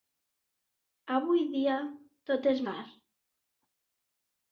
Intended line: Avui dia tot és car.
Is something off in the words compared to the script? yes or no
no